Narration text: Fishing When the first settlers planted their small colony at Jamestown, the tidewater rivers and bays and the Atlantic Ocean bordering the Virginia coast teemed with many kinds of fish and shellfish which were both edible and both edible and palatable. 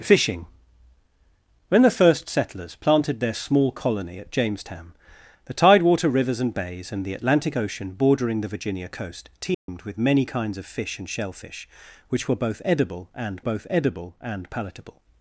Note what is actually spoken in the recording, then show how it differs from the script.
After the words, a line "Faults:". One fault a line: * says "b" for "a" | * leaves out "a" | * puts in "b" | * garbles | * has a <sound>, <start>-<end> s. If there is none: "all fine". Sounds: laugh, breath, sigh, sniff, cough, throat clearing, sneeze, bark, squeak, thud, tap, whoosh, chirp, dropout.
Fishing When the first settlers planted their small colony at Jamestown, the tidewater rivers and bays and the Atlantic Ocean bordering the Virginia coast teemed with many kinds of fish and shellfish which were both edible and both edible and palatable.
Faults:
* has a dropout, 9.5-9.7 s